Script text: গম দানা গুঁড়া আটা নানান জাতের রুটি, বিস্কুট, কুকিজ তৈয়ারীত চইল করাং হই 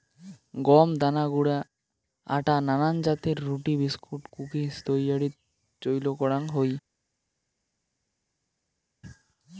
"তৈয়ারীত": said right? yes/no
yes